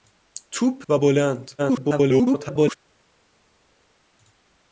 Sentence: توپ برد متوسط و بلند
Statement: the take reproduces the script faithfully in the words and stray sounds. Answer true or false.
false